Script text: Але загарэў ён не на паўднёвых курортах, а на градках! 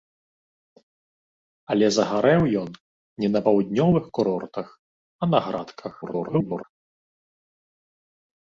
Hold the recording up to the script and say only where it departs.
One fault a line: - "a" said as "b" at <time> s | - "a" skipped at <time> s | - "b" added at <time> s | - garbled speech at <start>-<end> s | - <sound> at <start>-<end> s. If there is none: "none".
- garbled speech at 6.0-6.6 s